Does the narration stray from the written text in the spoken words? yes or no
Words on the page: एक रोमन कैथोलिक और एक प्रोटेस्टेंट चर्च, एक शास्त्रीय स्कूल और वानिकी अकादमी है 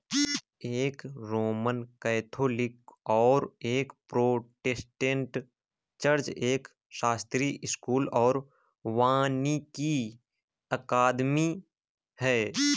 no